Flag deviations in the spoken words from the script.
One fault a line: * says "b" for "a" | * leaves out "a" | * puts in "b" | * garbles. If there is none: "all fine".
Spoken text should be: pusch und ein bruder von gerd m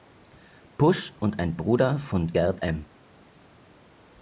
all fine